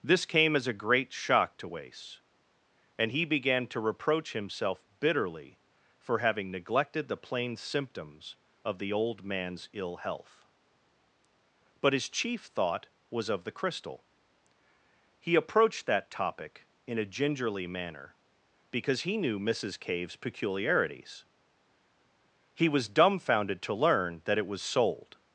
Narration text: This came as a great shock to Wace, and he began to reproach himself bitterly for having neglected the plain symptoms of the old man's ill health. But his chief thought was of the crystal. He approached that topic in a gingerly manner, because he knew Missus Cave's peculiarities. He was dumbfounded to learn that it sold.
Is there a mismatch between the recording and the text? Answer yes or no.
yes